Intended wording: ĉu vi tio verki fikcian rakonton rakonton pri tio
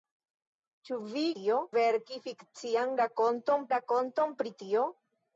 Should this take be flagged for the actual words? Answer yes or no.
no